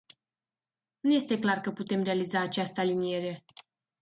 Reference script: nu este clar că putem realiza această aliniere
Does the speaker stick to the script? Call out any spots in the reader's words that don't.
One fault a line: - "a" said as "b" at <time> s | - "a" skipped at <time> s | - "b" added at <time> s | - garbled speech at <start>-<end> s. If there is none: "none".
none